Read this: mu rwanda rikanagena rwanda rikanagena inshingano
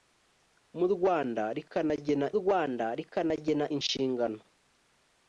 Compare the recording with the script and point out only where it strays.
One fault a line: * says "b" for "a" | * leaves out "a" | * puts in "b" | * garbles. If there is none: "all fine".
all fine